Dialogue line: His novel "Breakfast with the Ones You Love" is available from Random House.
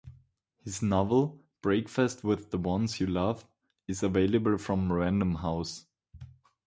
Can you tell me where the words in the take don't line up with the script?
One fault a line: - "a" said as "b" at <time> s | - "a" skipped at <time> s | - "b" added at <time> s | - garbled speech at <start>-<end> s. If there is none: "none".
none